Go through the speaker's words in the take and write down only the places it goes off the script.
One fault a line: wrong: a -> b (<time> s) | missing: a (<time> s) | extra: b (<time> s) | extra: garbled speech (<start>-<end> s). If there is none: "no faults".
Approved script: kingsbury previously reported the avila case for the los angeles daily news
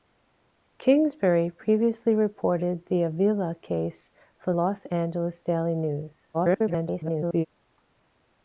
missing: the (4.5 s)
extra: garbled speech (6.3-7.5 s)